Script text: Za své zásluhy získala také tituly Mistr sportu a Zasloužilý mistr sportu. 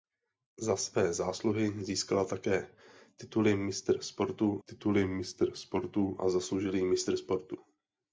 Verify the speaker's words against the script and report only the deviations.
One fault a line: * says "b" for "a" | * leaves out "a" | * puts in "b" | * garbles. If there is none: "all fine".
* puts in "tituly Mistr sportu"